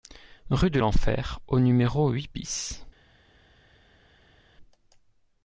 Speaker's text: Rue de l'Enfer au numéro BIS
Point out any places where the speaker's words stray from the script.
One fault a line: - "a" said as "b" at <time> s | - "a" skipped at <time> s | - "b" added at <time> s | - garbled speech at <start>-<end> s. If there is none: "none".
- "huit" added at 2.1 s